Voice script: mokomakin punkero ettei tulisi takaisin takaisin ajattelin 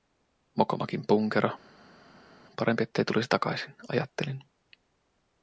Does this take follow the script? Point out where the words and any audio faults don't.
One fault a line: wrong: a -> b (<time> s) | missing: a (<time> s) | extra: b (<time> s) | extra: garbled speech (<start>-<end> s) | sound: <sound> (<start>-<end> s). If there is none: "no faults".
extra: parempi (2.6 s)
missing: takaisin (3.8 s)